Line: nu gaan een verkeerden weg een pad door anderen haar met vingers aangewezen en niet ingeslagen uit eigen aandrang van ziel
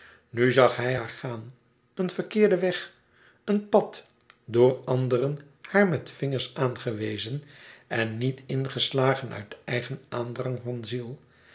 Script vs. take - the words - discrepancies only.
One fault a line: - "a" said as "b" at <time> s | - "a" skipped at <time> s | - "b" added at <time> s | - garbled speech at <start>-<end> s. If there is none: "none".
- "zag hij haar" added at 0.5 s